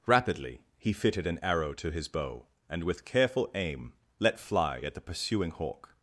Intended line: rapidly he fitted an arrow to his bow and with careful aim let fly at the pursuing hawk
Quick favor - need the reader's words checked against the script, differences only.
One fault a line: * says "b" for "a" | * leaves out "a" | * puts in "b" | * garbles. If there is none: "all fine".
all fine